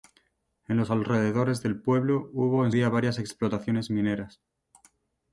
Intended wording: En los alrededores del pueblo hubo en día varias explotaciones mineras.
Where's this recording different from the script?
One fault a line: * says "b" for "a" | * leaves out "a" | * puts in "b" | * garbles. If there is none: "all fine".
all fine